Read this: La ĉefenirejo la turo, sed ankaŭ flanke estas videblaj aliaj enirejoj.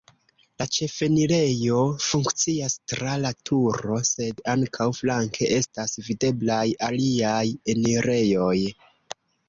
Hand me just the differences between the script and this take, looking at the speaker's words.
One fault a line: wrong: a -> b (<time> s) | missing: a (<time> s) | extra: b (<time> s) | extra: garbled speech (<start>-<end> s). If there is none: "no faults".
extra: funkcias tra (2.0 s)